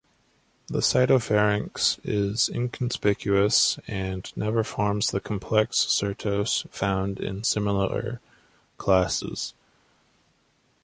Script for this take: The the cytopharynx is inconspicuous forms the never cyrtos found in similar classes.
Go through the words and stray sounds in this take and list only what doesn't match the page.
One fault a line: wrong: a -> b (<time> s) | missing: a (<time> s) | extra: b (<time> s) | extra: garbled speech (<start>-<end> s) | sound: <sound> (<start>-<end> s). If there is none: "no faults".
missing: the (0.8 s)
extra: and never (3.9 s)
wrong: never -> complex (5.2 s)